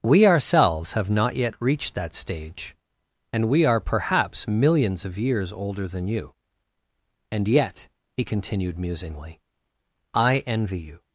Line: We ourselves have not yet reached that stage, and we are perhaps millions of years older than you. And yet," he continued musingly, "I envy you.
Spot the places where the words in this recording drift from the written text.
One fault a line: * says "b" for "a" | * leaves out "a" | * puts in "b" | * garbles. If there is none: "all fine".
all fine